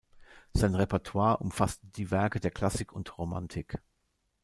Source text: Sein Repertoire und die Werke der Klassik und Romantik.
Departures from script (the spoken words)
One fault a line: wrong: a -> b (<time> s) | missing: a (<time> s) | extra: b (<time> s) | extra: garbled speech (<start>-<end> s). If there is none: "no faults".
wrong: und -> umfasste (1.4 s)